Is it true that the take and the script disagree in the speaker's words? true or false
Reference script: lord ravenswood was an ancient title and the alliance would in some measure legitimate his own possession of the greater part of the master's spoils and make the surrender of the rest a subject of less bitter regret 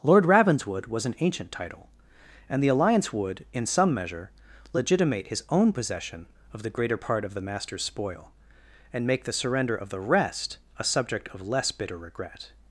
true